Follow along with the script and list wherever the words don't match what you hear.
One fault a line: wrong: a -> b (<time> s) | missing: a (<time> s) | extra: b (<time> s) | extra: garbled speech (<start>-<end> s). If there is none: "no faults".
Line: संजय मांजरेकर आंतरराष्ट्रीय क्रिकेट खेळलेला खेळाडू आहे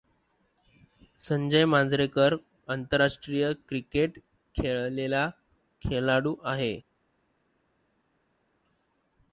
no faults